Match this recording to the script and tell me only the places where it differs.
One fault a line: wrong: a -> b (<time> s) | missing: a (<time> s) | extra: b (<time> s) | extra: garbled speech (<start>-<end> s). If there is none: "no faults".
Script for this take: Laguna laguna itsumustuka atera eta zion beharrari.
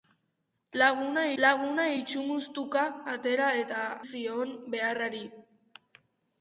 no faults